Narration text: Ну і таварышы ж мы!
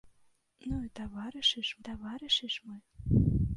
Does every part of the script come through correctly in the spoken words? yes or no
no